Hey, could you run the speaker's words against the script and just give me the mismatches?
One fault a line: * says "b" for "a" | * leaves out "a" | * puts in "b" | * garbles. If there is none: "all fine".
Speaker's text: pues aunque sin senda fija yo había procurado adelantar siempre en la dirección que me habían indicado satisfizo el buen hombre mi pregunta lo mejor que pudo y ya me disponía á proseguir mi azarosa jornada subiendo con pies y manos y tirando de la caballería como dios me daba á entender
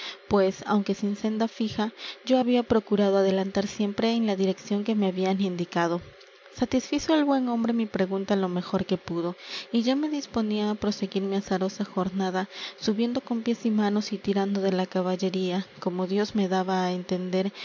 all fine